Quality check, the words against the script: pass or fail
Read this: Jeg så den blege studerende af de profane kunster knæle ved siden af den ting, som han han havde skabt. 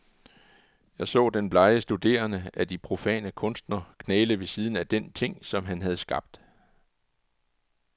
fail